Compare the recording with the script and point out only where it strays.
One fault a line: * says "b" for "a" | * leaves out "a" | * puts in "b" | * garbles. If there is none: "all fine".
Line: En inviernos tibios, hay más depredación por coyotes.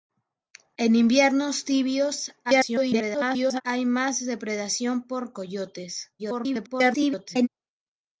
* garbles
* garbles